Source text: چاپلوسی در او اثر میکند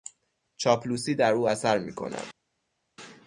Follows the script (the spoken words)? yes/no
yes